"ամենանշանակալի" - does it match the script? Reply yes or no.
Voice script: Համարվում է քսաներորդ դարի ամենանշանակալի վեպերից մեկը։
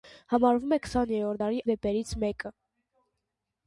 no